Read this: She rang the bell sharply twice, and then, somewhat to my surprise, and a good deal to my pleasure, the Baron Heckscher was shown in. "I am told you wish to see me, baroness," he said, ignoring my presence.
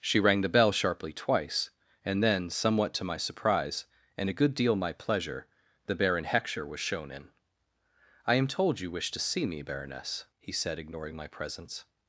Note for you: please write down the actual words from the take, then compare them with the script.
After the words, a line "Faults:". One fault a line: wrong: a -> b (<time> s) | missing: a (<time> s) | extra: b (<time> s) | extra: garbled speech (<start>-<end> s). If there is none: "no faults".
She rang the bell sharply twice, and then, somewhat to my surprise, and a good deal my pleasure, the Baron Heckscher was shown in. "I am told you wish to see me, baroness," he said, ignoring my presence.
Faults:
missing: to (4.8 s)